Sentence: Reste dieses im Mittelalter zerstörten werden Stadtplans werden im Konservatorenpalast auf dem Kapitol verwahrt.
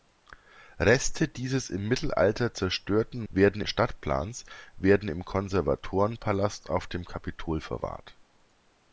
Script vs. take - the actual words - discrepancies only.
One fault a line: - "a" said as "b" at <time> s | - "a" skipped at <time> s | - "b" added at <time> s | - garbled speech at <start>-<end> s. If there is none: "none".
none